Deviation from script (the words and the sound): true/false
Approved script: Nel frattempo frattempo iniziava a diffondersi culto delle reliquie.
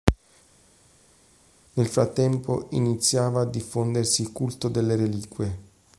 true